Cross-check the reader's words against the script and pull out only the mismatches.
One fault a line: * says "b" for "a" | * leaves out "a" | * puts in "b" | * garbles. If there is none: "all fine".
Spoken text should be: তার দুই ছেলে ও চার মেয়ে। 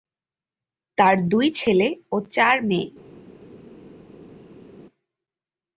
all fine